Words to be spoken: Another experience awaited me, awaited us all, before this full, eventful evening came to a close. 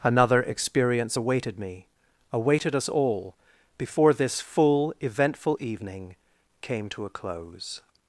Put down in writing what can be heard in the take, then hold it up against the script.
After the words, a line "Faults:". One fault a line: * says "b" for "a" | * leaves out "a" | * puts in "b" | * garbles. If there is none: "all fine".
Another experience awaited me, awaited us all, before this full, eventful evening came to a close.
Faults:
all fine